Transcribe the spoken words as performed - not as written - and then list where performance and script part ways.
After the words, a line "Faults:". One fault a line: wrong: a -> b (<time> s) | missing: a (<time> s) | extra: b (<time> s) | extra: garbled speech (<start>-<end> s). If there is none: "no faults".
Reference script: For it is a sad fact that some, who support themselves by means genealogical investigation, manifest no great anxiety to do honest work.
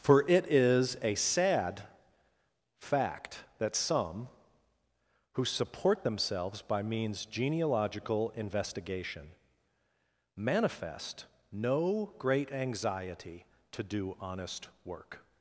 For it is a sad fact that some, who support themselves by means genealogical investigation, manifest no great anxiety to do honest work.
Faults:
no faults